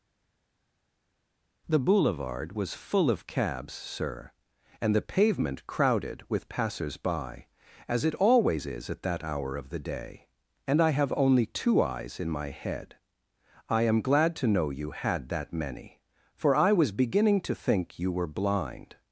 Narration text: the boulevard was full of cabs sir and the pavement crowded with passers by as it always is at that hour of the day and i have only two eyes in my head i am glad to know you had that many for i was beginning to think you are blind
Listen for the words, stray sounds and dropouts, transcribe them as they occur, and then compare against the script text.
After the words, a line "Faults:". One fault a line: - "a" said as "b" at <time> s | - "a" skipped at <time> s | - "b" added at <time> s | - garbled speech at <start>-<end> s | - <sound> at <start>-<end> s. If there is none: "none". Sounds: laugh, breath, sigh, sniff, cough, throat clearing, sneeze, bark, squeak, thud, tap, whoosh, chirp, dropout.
the boulevard was full of cabs sir and the pavement crowded with passers by as it always is at that hour of the day and i have only two eyes in my head i am glad to know you had that many for i was beginning to think you were blind
Faults:
- "are" said as "were" at 18.1 s